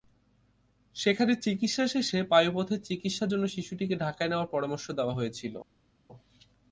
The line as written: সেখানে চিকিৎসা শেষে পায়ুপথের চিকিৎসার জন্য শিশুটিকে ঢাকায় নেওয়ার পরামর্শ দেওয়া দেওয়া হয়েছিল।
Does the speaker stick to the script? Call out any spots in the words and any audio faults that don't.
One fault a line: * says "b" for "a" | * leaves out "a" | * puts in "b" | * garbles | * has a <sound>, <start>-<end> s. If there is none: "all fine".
* leaves out "দেওয়া"